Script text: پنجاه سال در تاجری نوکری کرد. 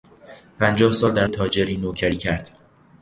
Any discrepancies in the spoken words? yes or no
no